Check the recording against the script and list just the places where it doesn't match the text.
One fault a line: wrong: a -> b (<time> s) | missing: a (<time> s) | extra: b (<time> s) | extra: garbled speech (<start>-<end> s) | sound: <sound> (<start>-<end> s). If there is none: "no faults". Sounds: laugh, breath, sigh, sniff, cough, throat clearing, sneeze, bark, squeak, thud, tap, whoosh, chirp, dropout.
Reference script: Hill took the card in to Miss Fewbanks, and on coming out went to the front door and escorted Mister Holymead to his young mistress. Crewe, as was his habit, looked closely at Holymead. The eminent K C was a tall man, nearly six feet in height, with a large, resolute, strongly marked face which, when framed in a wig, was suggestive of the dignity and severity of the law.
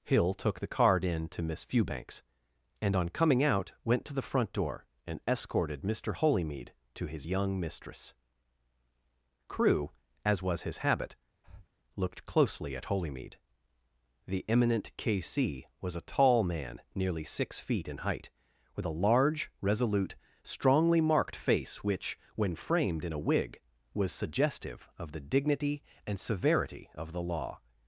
sound: breath (11.4-11.7 s)